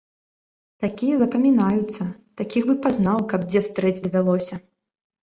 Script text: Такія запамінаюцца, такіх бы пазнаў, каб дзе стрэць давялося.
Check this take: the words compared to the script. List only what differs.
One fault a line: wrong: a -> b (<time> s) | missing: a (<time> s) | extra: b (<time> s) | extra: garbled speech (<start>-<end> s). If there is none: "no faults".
no faults